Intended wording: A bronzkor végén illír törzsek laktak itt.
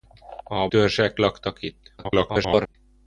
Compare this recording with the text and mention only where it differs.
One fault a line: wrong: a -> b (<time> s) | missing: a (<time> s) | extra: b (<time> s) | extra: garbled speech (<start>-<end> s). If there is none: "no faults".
missing: bronzkor végén illír (0.7 s)
extra: garbled speech (2.0-2.8 s)